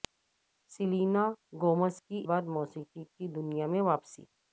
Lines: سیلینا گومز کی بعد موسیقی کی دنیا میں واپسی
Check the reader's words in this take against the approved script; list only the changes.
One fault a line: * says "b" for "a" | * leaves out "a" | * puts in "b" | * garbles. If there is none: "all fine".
all fine